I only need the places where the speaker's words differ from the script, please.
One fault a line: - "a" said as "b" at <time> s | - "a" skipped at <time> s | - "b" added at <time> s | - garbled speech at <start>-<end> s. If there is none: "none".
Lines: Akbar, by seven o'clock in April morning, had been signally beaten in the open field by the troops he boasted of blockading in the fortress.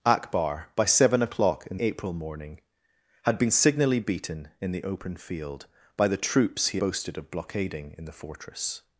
none